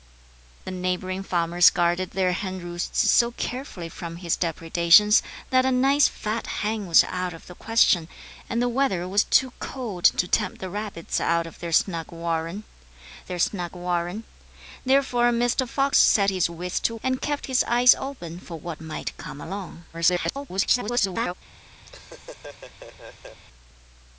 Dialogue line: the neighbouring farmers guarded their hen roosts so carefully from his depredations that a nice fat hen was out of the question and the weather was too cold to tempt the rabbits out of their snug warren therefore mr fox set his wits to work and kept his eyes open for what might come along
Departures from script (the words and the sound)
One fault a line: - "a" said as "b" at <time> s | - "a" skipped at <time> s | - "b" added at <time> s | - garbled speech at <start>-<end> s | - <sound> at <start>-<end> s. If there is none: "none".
- "their snug warren" added at 13.3 s
- "work" skipped at 16.9 s
- garbled speech at 19.9-21.3 s
- laugh at 21.9-23.4 s